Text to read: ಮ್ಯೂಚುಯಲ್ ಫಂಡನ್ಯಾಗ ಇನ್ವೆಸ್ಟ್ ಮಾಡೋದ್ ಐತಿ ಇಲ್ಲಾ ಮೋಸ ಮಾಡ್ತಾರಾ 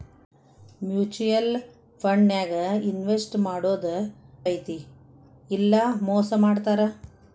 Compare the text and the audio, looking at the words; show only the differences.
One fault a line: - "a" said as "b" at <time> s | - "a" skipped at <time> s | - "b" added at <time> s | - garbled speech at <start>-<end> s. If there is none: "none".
none